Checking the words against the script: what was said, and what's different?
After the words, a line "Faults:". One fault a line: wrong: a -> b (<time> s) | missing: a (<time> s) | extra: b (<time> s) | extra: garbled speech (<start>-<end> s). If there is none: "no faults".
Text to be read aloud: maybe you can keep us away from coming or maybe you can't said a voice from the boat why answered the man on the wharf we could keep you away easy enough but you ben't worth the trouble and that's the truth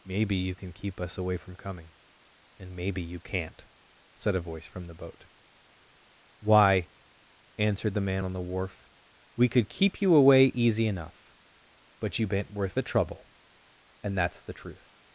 maybe you can keep us away from coming and maybe you can't said a voice from the boat why answered the man on the wharf we could keep you away easy enough but you ben't worth the trouble and that's the truth
Faults:
wrong: or -> and (2.6 s)